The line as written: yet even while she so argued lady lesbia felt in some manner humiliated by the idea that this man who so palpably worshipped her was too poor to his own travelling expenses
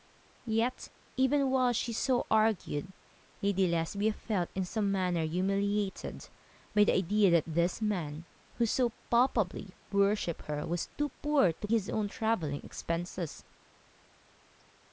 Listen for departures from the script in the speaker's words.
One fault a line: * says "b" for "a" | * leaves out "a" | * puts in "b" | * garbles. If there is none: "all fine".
all fine